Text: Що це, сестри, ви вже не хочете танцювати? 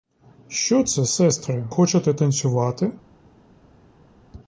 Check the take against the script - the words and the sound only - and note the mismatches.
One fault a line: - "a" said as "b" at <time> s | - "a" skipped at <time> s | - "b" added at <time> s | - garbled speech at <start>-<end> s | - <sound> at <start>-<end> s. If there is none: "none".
- "ви вже не" skipped at 1.7 s